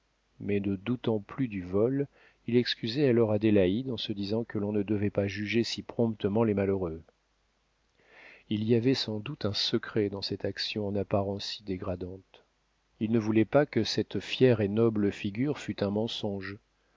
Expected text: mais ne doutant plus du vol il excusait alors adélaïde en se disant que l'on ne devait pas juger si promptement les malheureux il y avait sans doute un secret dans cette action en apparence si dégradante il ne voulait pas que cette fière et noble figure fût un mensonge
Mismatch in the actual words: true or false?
false